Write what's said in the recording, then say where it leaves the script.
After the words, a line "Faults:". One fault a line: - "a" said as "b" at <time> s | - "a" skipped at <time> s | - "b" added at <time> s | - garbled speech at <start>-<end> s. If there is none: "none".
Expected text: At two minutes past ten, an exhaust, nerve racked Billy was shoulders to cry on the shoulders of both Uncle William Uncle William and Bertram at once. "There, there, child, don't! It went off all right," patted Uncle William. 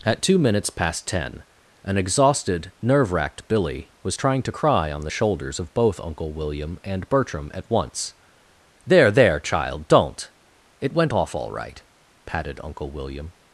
At two minutes past ten, an exhausted, nerve racked Billy was trying to cry on the shoulders of both Uncle William and Bertram at once. "There, there, child, don't! It went off all right," patted Uncle William.
Faults:
- "exhaust" said as "exhausted" at 1.9 s
- "shoulders" said as "trying" at 4.2 s
- "Uncle William" skipped at 6.8 s